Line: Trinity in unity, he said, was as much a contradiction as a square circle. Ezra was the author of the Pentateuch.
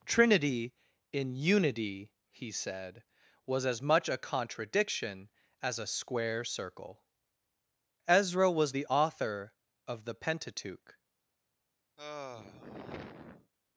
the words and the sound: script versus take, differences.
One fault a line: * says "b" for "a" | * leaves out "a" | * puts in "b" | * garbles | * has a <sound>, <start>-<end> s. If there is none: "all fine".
* has a sigh, 12.0-13.5 s